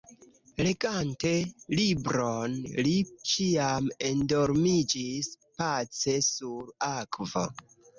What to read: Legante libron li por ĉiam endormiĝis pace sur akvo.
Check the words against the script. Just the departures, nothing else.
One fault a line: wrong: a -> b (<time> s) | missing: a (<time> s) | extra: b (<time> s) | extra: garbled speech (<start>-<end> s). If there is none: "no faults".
missing: por (3.0 s)